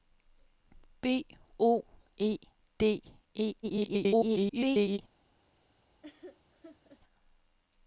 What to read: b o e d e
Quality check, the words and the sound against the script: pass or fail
fail